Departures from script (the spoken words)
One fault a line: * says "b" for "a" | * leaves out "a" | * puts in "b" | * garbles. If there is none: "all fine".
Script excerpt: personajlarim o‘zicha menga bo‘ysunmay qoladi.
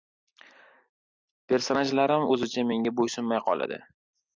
all fine